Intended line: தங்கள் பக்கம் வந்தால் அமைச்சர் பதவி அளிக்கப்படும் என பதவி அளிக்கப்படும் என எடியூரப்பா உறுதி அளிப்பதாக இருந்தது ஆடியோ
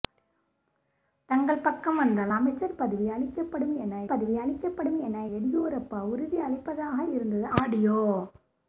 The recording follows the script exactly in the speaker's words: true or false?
true